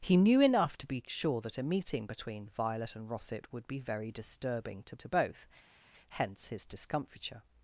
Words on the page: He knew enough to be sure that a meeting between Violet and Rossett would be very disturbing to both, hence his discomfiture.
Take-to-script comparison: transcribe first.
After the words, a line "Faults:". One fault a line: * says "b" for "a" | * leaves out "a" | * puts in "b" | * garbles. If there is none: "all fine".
He knew enough to be sure that a meeting between Violet and Rossett would be very disturbing to to both, hence his discomfiture.
Faults:
* puts in "to"